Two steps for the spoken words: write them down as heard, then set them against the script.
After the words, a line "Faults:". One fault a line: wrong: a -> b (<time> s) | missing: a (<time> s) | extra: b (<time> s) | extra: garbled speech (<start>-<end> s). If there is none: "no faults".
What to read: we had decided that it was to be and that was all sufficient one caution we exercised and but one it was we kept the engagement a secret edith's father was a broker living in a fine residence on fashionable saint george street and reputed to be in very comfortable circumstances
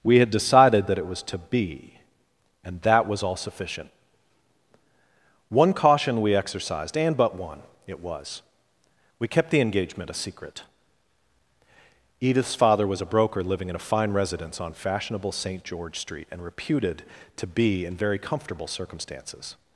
we had decided that it was to be and that was all sufficient one caution we exercised and but one it was we kept the engagement a secret edith's father was a broker living in a fine residence on fashionable saint george street and reputed to be in very comfortable circumstances
Faults:
no faults